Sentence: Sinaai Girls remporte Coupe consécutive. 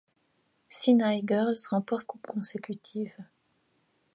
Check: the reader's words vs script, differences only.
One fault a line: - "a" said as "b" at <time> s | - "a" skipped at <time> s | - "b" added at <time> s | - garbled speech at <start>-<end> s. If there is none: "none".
none